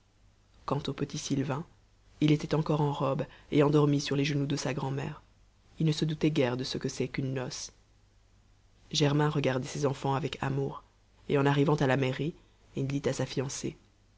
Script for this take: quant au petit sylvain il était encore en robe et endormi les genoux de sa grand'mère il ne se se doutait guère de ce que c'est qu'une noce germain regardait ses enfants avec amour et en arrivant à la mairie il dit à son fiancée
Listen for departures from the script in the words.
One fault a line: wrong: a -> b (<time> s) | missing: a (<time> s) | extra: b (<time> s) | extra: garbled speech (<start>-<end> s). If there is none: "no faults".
extra: sur (4.0 s)
missing: se (6.0 s)
wrong: son -> sa (13.1 s)